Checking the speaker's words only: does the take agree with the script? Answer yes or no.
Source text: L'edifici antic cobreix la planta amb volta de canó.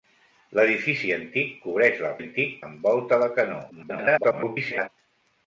no